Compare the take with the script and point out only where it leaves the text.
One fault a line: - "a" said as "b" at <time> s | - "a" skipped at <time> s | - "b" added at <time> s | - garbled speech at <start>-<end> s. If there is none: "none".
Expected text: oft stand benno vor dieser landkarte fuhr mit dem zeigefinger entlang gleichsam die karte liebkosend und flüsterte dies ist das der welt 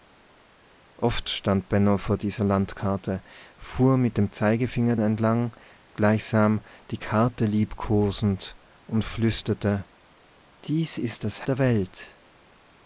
none